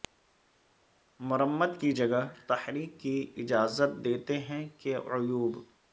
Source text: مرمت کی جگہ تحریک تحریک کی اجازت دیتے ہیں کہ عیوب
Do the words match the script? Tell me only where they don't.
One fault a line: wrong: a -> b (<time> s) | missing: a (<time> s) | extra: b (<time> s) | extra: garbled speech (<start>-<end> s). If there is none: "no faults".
missing: تحریک (3.0 s)